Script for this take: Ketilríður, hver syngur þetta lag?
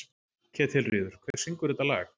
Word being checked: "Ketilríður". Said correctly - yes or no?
yes